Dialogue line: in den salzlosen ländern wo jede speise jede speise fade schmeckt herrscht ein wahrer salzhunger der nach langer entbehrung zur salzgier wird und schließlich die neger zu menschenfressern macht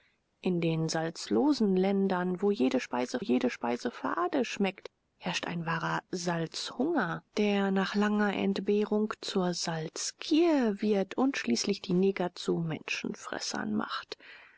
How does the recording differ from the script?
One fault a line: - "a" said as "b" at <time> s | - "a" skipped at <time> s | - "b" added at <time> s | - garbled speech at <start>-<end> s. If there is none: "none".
none